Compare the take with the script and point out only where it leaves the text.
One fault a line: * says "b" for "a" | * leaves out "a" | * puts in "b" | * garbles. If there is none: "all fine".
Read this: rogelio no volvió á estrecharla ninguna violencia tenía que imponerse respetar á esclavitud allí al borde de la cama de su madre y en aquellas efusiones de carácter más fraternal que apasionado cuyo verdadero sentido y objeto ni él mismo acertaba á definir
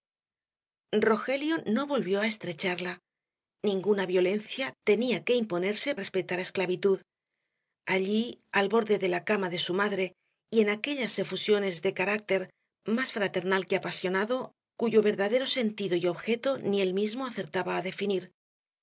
all fine